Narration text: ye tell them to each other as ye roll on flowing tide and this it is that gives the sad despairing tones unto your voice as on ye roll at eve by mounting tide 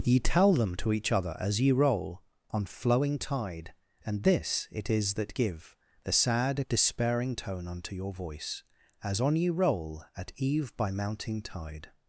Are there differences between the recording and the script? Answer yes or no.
yes